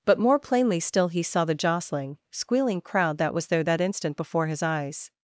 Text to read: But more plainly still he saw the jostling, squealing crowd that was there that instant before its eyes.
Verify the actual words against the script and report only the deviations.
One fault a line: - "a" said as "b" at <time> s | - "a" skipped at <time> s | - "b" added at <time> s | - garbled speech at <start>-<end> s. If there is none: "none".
- "its" said as "his" at 4.5 s